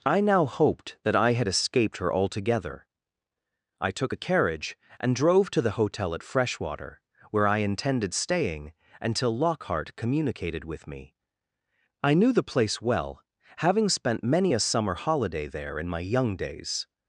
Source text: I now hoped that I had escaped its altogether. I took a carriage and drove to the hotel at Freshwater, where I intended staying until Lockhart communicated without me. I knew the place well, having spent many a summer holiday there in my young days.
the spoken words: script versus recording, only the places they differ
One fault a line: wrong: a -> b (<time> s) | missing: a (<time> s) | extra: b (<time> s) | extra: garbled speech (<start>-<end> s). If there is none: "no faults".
wrong: its -> her (2.0 s)
wrong: without -> with (10.6 s)